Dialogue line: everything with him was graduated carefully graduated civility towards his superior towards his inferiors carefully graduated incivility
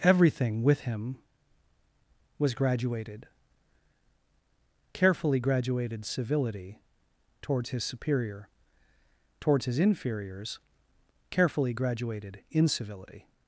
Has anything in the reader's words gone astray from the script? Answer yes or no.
no